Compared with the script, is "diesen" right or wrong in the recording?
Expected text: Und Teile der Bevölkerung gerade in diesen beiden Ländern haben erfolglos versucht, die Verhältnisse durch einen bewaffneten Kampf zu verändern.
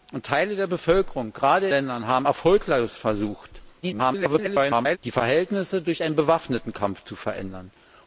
wrong